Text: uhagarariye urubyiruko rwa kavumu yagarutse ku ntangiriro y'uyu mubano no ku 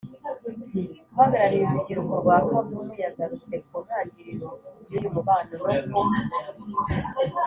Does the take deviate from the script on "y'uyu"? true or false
false